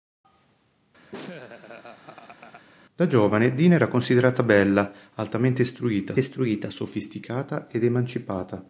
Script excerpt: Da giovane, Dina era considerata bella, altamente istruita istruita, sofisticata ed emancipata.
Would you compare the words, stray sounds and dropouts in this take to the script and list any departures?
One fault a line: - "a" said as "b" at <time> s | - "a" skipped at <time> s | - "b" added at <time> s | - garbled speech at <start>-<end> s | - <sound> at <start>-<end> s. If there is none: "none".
- laugh at 1.1-2.7 s